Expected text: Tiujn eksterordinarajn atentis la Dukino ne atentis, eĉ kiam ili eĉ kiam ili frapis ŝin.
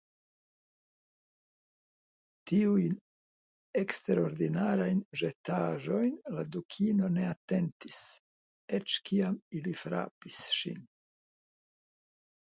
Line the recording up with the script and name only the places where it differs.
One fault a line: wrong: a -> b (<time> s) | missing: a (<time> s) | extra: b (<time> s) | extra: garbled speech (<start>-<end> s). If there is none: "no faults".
wrong: atentis -> ĵetaĵojn (5.2 s)
missing: eĉ kiam ili (9.7 s)